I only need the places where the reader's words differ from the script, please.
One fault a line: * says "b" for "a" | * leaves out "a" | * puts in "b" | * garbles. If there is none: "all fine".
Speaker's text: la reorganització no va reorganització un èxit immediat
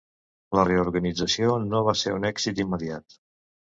* says "ser" for "reorganització"